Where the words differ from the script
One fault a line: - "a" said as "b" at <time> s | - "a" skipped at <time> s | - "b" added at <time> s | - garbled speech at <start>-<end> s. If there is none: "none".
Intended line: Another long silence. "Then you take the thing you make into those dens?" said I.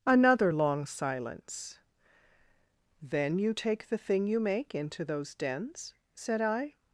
none